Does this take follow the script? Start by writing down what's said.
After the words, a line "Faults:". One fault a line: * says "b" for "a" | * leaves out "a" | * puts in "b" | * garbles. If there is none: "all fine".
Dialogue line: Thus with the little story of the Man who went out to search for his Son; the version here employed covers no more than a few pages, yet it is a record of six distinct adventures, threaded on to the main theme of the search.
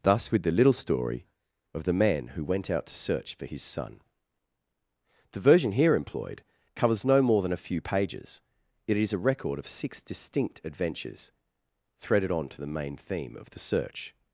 Thus with the little story of the Man who went out to search for his Son; the version here employed covers no more than a few pages, it is a record of six distinct adventures, threaded on to the main theme of the search.
Faults:
* leaves out "yet"